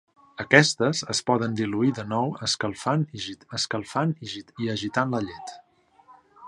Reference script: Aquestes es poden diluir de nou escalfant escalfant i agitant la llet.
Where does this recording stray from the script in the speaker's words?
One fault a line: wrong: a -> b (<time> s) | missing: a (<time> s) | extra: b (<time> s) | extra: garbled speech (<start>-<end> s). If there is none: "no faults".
no faults